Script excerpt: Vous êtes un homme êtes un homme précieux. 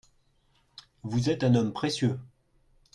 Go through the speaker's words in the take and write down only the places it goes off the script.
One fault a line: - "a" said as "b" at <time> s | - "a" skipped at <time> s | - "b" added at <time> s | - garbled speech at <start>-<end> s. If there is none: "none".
- "êtes un homme" skipped at 1.7 s